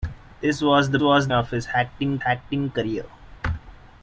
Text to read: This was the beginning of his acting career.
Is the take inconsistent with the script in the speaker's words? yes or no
yes